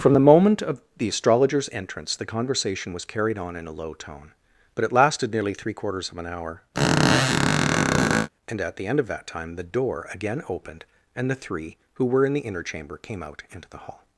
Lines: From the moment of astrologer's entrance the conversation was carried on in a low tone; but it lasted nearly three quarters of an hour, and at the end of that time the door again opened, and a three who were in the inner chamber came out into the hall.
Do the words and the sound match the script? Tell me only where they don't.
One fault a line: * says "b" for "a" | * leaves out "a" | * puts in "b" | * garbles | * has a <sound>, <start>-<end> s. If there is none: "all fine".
* puts in "the"
* has a squeak, 6.7-8.3 s
* says "the" for "a"